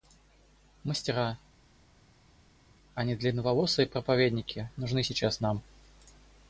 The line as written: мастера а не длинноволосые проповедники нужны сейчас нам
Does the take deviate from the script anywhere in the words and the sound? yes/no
no